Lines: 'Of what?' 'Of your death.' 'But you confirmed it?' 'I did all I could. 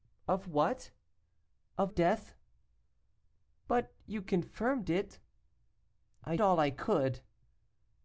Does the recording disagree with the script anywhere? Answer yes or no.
yes